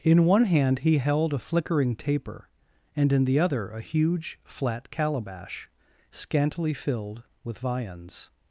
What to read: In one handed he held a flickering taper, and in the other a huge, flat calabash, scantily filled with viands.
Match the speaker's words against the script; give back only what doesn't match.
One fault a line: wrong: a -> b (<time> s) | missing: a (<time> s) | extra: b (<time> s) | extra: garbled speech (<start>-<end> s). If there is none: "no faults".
wrong: handed -> hand (0.5 s)